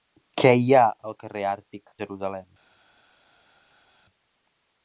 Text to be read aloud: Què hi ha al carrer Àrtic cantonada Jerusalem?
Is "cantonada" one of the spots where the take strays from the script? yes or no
yes